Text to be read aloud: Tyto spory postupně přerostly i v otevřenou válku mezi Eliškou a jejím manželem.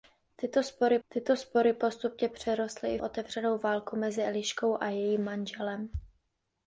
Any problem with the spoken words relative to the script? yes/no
yes